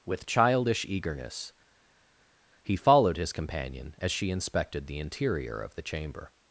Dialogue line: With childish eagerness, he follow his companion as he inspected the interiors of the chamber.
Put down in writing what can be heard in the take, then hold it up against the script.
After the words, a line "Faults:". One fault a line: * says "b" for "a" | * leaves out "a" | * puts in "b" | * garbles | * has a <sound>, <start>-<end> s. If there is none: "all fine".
With childish eagerness, he followed his companion as she inspected the interior of the chamber.
Faults:
* says "followed" for "follow"
* says "she" for "he"
* says "interior" for "interiors"